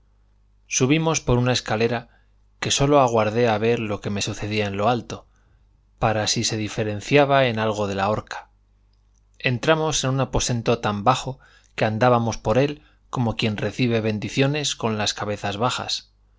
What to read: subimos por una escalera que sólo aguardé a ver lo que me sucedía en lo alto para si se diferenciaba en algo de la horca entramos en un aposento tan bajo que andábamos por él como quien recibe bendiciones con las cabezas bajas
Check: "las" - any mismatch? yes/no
no